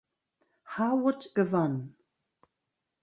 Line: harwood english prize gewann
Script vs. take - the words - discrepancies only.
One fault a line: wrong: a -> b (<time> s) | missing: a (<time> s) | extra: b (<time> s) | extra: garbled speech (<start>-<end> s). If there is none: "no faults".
missing: english prize (1.3 s)